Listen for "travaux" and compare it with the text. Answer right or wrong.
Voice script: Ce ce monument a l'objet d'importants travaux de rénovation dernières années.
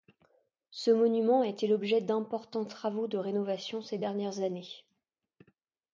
right